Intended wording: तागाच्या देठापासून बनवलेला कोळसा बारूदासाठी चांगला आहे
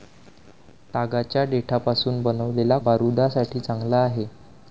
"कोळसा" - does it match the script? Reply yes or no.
no